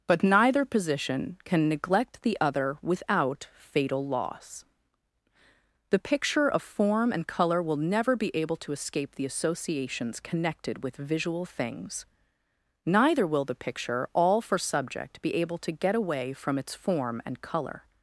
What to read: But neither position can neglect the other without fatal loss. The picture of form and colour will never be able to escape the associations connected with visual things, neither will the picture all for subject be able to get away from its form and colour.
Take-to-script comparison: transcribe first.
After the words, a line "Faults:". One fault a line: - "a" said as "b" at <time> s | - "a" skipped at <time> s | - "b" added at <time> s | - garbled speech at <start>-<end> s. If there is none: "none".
But neither position can neglect the other without fatal loss. The picture of form and colour will never be able to escape the associations connected with visual things, neither will the picture all for subject be able to get away from its form and colour.
Faults:
none